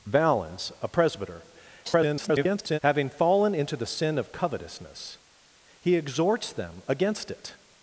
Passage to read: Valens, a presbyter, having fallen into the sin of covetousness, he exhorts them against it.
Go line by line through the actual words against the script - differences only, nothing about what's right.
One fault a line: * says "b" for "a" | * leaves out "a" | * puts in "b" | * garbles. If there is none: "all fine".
* garbles